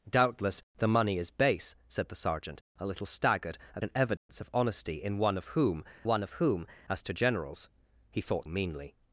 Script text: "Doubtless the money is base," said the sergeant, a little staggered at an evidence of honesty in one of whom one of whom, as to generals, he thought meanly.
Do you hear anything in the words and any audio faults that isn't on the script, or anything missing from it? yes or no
yes